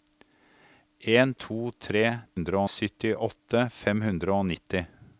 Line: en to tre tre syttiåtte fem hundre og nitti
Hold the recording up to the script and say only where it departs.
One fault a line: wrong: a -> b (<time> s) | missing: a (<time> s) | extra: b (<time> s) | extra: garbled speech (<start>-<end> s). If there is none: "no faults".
wrong: tre -> hundre (2.3 s)